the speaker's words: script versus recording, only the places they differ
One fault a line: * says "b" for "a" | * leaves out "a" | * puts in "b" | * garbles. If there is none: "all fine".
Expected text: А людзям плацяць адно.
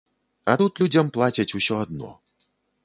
* puts in "тут"
* puts in "усё"